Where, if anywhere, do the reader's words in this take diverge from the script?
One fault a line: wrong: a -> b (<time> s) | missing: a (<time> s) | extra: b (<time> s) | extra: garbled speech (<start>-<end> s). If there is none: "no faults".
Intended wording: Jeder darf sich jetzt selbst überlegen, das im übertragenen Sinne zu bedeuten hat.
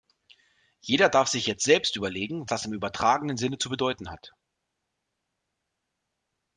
no faults